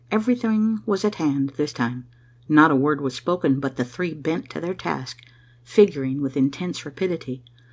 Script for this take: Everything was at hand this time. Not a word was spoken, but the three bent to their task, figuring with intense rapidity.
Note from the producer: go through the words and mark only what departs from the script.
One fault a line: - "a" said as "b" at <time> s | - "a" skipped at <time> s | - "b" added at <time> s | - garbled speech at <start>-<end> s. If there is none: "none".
none